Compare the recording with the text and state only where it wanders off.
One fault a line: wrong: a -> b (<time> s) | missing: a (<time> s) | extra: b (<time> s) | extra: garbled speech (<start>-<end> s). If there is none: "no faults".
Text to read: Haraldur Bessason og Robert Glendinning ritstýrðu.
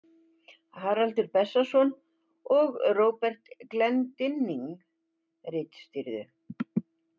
no faults